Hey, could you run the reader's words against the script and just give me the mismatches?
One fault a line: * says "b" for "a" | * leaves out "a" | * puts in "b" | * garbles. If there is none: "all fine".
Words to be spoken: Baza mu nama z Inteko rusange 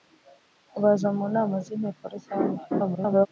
* garbles